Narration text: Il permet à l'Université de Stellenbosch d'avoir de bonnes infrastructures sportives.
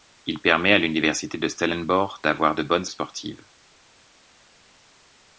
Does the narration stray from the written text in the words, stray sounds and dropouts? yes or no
yes